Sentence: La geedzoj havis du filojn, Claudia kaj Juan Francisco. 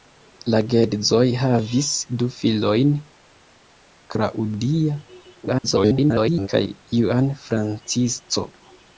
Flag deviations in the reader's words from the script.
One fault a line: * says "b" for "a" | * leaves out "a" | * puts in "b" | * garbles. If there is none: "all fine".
* garbles